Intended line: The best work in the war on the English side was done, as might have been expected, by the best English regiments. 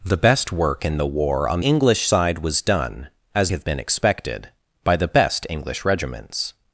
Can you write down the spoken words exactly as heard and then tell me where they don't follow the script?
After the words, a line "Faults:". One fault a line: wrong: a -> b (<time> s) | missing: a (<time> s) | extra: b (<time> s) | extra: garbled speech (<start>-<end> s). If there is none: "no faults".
The best work in the war on English side was done, as have been expected, by the best English regiments.
Faults:
missing: the (1.6 s)
missing: might (3.5 s)